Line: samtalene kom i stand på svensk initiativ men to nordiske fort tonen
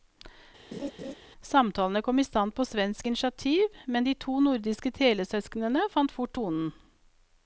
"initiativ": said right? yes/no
yes